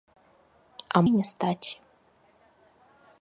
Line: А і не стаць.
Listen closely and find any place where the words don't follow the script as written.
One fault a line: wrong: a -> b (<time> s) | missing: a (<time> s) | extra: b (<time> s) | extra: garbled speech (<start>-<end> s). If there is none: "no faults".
no faults